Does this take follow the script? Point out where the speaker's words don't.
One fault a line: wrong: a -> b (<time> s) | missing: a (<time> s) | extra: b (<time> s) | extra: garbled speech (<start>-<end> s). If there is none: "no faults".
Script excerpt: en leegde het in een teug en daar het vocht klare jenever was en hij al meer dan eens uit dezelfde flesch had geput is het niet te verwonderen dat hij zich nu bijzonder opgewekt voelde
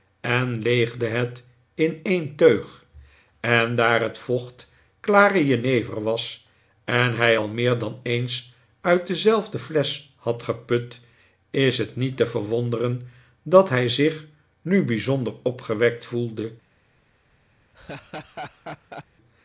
no faults